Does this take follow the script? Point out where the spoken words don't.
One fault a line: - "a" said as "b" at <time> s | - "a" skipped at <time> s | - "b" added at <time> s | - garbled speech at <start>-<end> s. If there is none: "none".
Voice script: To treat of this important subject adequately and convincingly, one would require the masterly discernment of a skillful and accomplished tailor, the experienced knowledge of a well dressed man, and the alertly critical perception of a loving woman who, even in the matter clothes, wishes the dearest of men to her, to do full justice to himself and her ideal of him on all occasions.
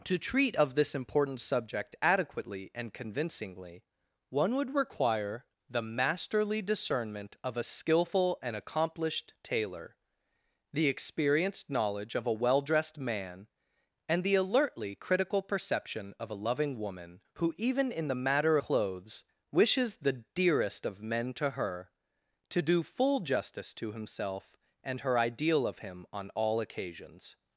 none